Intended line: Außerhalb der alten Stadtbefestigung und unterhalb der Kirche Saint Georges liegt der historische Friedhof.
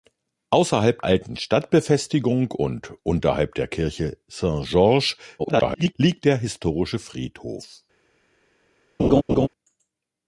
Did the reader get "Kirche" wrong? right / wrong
right